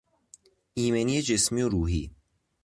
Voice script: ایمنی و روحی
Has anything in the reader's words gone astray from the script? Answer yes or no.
yes